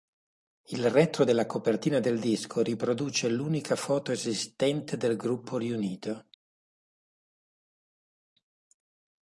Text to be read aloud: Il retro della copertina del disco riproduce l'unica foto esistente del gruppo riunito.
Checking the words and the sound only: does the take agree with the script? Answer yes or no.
yes